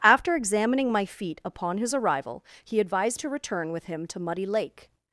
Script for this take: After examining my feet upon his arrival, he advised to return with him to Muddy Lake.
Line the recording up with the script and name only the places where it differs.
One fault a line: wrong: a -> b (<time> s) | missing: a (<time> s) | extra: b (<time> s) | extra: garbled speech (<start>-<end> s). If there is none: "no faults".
no faults